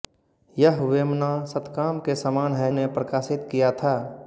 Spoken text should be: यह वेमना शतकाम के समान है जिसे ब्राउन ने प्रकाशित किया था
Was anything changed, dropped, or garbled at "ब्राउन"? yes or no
yes